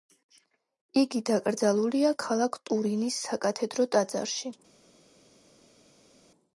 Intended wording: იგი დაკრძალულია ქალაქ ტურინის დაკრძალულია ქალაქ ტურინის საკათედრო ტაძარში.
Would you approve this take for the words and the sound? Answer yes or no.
no